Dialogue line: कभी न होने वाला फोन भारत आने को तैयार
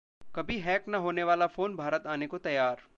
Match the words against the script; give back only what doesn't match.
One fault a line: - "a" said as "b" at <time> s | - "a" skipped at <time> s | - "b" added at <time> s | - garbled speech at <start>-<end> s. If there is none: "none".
- "हैक" added at 0.6 s